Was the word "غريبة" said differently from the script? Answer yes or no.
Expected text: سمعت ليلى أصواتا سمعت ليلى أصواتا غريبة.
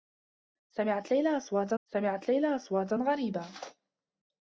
no